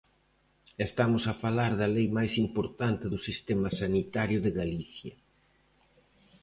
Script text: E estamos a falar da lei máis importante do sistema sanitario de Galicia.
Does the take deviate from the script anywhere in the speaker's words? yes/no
no